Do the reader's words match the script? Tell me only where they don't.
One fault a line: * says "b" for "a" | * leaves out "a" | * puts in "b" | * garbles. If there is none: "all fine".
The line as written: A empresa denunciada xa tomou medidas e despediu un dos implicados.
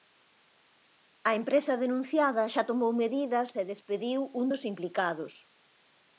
all fine